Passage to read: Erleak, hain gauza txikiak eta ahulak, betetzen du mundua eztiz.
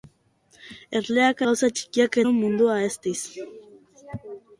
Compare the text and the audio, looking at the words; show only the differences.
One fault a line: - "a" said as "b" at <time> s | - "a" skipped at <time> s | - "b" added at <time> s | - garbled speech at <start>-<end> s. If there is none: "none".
- "hain" skipped at 1.4 s
- "eta ahulak betetzen" skipped at 2.2 s